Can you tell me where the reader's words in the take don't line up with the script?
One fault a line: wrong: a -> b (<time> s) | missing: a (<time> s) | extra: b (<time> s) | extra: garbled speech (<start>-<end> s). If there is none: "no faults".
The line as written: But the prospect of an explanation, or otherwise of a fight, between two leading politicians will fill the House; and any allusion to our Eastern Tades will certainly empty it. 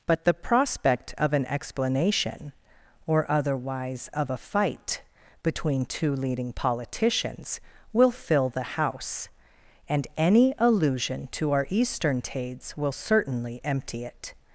no faults